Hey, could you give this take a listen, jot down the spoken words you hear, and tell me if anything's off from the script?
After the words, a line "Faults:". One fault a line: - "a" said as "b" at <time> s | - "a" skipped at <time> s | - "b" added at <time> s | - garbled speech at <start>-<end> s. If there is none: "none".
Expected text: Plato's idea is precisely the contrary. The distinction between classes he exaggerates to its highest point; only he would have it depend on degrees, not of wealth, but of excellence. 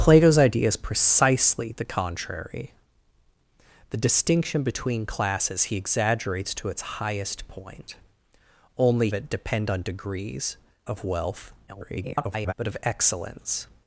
Plato's idea is precisely the contrary. The distinction between classes he exaggerates to its highest point; only it depend on degrees, of wealth, [garbled] but of excellence.
Faults:
- "he would have" skipped at 9.1 s
- "not" skipped at 10.6 s
- garbled speech at 11.7-12.5 s